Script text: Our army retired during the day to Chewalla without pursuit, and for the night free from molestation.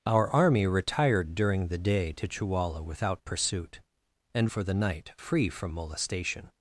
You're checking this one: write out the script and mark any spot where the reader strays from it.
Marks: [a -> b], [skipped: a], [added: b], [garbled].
Our army retired during the day to Chewalla without pursuit, and for the night free from molestation.